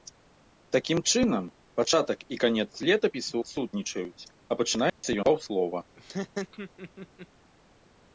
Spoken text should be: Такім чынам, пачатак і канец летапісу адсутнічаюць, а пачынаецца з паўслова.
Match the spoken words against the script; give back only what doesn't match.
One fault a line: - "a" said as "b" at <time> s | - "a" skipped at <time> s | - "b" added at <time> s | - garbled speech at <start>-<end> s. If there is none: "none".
none